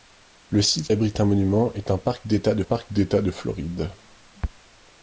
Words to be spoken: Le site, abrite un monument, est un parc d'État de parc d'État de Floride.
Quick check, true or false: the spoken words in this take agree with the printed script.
true